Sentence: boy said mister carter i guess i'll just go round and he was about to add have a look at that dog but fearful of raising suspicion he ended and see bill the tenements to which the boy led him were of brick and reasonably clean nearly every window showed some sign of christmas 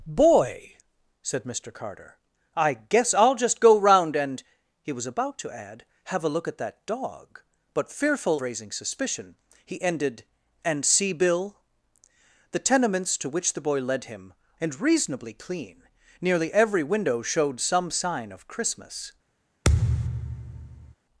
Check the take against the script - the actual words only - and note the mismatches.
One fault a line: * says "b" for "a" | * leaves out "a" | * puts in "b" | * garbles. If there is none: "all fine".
* leaves out "of"
* leaves out "were of brick"